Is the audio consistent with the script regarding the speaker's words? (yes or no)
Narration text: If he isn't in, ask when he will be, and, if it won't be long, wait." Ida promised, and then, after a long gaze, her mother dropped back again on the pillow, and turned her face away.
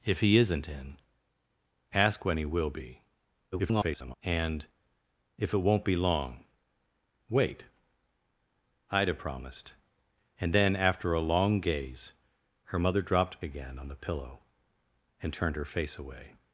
no